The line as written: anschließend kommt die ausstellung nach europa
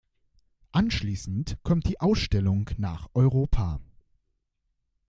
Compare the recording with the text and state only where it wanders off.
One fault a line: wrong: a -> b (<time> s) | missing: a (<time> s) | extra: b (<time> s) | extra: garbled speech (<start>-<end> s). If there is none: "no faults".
no faults